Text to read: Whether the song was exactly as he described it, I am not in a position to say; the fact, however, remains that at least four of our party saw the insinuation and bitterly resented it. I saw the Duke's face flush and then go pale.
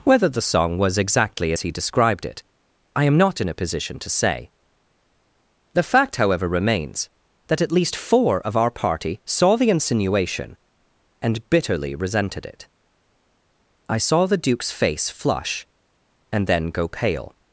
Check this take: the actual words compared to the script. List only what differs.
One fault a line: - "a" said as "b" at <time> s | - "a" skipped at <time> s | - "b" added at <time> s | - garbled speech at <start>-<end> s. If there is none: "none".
none